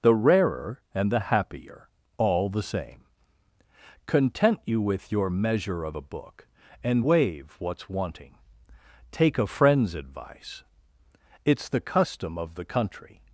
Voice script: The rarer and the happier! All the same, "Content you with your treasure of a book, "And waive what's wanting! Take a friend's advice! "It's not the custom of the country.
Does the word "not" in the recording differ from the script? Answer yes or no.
yes